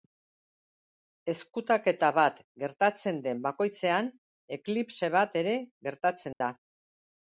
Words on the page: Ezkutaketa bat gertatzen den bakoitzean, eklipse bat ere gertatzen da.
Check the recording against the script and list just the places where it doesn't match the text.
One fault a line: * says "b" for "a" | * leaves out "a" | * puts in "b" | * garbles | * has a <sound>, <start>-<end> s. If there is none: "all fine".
* has a dropout, 6.3-6.4 s